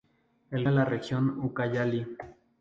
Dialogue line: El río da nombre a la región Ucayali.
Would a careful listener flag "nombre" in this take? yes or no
yes